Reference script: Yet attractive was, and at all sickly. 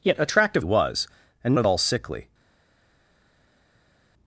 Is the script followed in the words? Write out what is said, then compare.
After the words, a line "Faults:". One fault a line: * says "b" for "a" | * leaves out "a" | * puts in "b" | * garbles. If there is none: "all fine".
Yet attractive was, and at all sickly.
Faults:
all fine